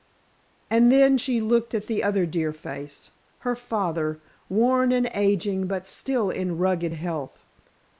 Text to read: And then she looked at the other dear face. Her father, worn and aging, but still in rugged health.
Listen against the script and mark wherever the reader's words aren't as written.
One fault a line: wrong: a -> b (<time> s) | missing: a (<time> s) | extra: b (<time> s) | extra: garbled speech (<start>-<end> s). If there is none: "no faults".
no faults